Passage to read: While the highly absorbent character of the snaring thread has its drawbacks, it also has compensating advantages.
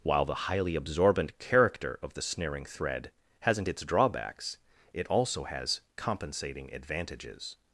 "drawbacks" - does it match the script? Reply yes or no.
yes